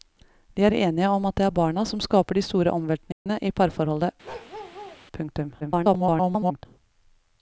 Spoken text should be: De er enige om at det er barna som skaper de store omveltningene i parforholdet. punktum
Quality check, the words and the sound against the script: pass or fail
fail